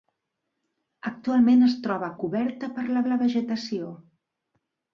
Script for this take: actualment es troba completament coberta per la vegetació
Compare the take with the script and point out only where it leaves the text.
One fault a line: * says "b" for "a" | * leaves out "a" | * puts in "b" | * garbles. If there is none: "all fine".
* leaves out "completament"
* puts in "la"